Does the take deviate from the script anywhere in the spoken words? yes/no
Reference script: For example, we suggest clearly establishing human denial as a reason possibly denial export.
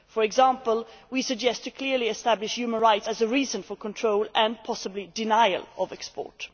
yes